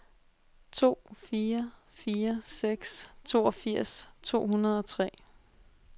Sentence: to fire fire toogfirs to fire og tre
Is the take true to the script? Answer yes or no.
no